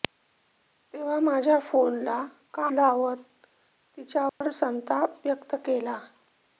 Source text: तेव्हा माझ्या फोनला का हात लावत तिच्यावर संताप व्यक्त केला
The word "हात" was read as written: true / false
false